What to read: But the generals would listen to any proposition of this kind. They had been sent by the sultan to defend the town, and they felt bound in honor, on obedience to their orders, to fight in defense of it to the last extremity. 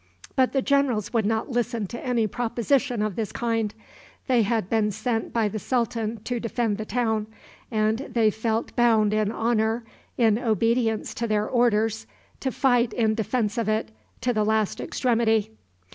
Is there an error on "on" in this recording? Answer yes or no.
yes